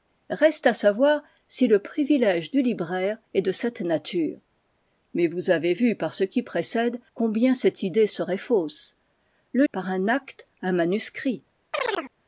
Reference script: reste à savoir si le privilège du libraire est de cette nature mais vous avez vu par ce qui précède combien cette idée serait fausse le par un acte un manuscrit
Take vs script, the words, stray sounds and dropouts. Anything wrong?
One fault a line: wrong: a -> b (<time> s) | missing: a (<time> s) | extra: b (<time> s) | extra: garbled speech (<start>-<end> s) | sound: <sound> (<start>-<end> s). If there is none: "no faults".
sound: chirp (11.7-12.1 s)